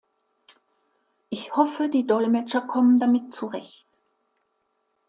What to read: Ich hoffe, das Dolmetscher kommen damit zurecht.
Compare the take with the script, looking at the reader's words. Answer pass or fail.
fail